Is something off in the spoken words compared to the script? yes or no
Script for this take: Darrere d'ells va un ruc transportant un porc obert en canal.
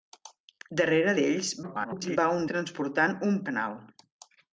yes